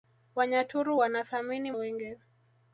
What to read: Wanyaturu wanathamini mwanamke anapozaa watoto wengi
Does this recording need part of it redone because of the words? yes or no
yes